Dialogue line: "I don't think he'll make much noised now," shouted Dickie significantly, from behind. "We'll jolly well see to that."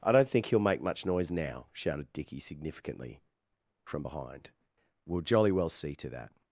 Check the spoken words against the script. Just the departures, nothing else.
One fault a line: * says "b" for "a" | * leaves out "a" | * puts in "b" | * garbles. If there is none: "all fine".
* says "noise" for "noised"